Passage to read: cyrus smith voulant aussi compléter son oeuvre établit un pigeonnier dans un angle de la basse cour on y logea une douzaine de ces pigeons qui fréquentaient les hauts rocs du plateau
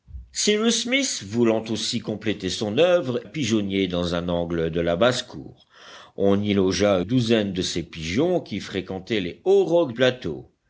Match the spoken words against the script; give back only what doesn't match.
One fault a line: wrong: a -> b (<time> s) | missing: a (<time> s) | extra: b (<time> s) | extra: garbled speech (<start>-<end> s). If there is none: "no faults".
missing: établit un (3.2 s)
missing: une (7.0 s)
missing: du (9.9 s)